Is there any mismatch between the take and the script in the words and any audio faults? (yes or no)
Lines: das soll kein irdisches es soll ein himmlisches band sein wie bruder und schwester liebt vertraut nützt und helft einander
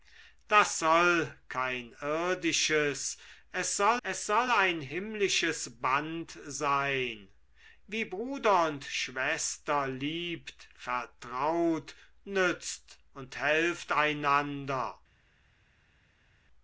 yes